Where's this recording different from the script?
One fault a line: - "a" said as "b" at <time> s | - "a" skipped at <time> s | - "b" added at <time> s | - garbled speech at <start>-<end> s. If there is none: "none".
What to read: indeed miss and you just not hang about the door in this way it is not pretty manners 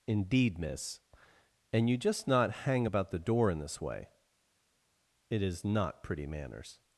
none